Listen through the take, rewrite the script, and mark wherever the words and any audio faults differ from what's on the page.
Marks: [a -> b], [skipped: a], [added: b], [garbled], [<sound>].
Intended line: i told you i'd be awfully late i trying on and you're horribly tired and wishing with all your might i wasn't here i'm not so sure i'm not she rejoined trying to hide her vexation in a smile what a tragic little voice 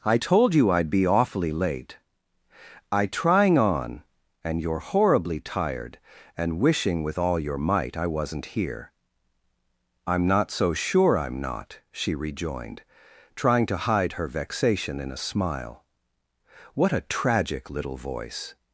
i told you i'd be awfully late i trying on and you're horribly tired and wishing with all your might i wasn't here i'm not so sure i'm not she rejoined trying to hide her vexation in a smile what a tragic little voice